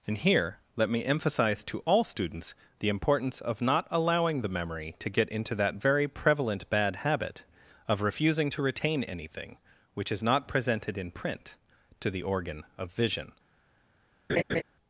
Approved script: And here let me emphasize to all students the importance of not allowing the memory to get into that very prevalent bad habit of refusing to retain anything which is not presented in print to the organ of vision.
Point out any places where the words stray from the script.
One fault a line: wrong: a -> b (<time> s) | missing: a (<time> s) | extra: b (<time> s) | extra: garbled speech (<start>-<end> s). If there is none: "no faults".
no faults